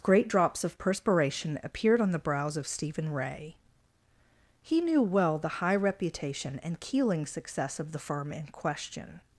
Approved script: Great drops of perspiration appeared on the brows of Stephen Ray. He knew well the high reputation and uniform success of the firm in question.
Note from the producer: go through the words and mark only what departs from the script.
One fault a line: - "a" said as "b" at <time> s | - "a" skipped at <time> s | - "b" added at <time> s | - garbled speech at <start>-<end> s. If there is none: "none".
- "uniform" said as "keeling" at 6.8 s